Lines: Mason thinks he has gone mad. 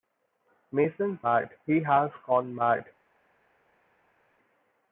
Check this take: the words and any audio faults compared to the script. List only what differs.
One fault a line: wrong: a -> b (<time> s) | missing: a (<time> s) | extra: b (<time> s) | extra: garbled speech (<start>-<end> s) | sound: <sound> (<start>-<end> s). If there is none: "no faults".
wrong: thinks -> mad (1.2 s)